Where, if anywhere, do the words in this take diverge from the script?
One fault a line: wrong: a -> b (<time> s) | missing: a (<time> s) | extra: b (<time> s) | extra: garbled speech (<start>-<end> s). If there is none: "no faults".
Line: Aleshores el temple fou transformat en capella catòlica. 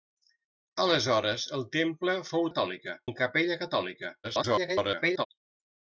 wrong: transformat -> catòlica (2.5 s)
extra: garbled speech (4.2-5.3 s)